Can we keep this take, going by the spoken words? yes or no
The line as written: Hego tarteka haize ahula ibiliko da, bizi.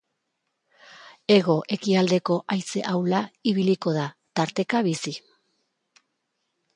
no